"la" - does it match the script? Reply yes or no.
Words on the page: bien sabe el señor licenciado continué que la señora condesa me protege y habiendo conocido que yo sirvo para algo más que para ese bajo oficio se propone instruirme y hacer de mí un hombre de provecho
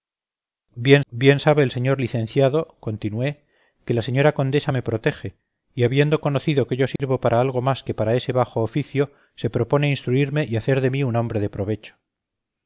yes